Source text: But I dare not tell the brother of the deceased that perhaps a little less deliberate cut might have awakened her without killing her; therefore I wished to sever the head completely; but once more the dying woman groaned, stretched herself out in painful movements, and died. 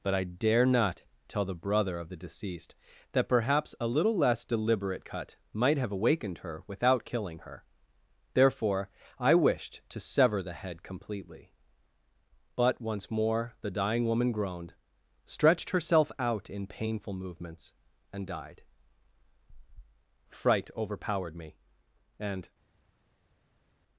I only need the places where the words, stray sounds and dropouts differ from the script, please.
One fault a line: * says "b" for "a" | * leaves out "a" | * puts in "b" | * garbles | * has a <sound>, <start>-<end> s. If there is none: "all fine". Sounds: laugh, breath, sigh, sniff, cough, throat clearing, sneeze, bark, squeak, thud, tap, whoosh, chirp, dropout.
* puts in "Fright overpowered me and"